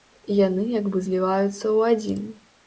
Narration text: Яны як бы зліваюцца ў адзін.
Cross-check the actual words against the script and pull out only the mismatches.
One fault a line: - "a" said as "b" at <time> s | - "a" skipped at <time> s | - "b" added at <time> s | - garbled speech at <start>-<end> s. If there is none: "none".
none